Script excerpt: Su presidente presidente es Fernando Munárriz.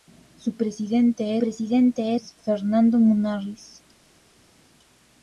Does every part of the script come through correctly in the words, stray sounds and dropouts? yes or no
yes